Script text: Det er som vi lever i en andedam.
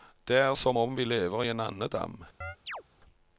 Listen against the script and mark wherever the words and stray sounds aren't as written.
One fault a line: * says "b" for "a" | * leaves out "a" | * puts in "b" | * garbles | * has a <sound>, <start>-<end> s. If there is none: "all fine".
* puts in "om"
* has a chirp, 2.4-2.8 s